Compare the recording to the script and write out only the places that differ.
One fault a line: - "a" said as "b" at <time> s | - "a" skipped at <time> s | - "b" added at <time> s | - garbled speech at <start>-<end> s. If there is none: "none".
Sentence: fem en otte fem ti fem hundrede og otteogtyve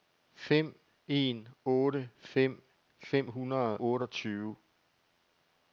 - "ti" skipped at 2.6 s
- "og" skipped at 3.8 s